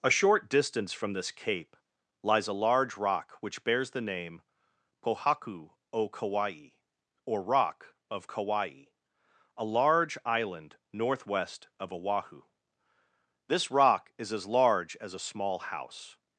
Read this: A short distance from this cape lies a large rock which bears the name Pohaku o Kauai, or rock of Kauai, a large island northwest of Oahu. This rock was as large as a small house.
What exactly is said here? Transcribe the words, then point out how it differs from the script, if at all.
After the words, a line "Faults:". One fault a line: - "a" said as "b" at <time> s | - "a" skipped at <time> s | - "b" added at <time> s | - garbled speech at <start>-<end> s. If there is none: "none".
A short distance from this cape lies a large rock which bears the name Pohaku o Kauai, or rock of Kauai, a large island northwest of Oahu. This rock is as large as a small house.
Faults:
- "was" said as "is" at 14.2 s